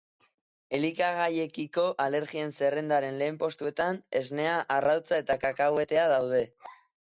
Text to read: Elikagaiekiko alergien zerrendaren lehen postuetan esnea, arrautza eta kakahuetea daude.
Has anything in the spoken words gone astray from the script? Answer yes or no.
no